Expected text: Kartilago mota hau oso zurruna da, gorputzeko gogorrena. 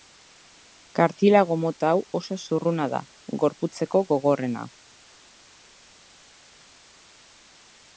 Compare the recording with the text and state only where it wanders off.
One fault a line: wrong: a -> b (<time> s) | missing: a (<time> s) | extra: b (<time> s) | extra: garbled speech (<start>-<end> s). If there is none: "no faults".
no faults